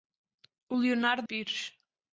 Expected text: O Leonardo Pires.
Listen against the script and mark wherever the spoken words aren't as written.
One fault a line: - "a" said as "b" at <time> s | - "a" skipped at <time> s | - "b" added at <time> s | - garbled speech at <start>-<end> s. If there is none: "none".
none